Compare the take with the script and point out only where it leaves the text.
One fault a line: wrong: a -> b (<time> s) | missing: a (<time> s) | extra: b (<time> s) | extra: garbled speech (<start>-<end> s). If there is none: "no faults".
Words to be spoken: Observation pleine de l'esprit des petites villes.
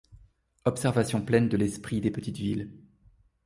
no faults